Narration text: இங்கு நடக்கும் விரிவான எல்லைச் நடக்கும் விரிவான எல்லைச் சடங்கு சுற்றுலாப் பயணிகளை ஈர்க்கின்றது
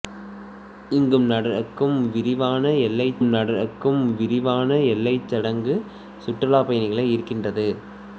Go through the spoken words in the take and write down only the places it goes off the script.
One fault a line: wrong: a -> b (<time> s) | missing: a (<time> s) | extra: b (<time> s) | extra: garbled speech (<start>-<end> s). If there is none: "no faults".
no faults